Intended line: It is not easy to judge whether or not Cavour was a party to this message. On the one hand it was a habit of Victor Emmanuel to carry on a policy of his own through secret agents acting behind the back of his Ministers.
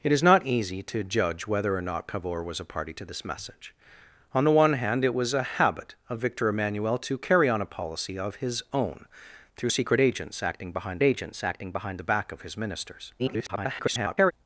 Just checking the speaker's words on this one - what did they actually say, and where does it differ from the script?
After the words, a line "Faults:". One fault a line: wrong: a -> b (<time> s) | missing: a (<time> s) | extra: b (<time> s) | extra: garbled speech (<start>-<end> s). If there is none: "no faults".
It is not easy to judge whether or not Cavour was a party to this message. On the one hand it was a habit of Victor Emmanuel to carry on a policy of his own through secret agents acting behind agents acting behind the back of his Ministers. [garbled]
Faults:
extra: agents acting behind (11.0 s)
extra: garbled speech (13.2-14.3 s)